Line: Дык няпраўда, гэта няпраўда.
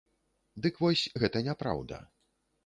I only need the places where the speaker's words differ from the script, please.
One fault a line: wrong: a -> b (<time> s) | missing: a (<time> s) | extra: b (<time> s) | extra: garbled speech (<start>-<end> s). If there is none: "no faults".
wrong: няпраўда -> вось (0.8 s)